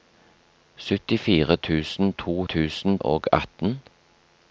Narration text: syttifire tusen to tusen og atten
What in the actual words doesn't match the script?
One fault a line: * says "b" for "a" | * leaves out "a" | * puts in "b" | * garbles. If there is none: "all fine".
all fine